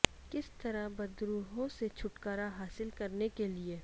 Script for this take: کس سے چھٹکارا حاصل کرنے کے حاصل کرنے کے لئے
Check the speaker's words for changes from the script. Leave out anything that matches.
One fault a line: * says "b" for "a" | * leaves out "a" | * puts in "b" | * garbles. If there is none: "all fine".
* puts in "طرح بدروحوں"
* leaves out "حاصل کرنے کے"